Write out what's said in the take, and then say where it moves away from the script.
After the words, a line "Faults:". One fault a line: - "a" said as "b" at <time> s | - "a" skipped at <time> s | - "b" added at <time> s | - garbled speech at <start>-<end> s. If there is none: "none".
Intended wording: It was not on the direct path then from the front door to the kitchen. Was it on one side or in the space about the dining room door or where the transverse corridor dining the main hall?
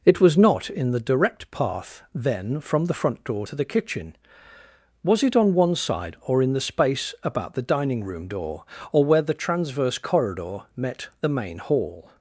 It was not in the direct path then from the front door to the kitchen. Was it on one side or in the space about the dining room door or where the transverse corridor met the main hall?
Faults:
- "on" said as "in" at 0.7 s
- "dining" said as "met" at 10.7 s